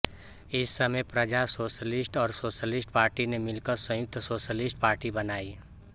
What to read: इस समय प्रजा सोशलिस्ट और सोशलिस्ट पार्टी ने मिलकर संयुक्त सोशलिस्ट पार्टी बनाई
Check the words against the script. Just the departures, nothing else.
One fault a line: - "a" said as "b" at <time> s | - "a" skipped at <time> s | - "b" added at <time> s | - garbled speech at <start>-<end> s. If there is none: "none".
none